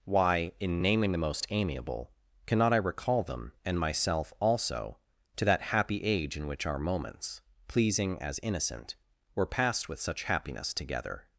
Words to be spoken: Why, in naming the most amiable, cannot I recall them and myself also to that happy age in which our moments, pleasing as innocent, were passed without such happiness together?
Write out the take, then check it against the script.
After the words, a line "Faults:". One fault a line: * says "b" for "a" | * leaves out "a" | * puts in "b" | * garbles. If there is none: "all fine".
Why, in naming the most amiable, cannot I recall them and myself also to that happy age in which our moments, pleasing as innocent, were passed with such happiness together?
Faults:
* says "with" for "without"